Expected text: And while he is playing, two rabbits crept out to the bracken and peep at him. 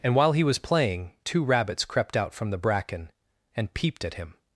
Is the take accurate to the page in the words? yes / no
no